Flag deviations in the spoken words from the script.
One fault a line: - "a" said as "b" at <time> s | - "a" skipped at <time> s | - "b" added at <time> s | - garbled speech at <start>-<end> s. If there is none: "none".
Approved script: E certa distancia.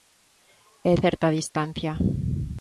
none